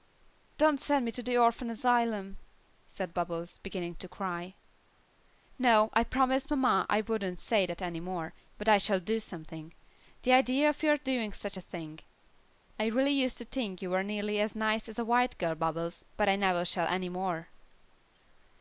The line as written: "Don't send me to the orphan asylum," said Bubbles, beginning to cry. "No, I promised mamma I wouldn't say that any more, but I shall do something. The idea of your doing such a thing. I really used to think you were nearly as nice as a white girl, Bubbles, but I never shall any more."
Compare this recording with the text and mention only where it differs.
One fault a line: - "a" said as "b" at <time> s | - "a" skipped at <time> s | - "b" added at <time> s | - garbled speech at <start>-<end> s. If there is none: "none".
none